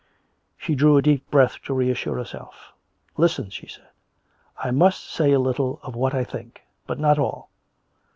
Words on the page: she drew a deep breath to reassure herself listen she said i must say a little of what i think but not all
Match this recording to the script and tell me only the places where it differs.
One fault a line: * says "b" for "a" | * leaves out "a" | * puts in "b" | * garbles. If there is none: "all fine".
all fine